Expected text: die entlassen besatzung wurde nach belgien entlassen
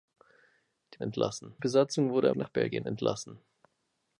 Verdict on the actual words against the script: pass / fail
pass